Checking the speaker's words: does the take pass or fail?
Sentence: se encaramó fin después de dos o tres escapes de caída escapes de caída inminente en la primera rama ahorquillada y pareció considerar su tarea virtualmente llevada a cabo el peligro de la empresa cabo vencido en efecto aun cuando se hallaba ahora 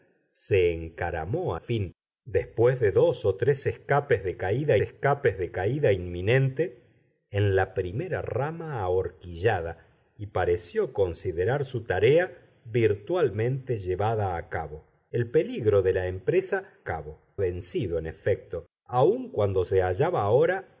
pass